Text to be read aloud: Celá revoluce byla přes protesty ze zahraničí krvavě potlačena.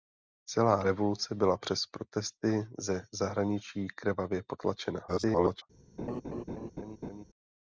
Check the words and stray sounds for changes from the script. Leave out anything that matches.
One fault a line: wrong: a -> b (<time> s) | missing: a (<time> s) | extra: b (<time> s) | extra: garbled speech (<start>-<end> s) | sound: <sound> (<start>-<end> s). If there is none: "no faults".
extra: garbled speech (5.1-5.6 s)
sound: laugh (6.0-7.2 s)